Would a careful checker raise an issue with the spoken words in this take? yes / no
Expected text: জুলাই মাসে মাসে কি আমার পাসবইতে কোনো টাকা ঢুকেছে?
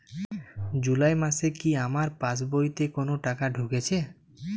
yes